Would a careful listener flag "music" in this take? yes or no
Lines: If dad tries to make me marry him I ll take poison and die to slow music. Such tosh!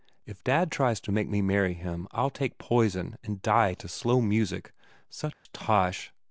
no